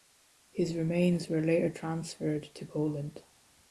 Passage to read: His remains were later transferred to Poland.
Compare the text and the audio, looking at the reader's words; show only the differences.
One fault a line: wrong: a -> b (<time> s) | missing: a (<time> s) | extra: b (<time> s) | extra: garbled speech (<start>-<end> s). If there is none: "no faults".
no faults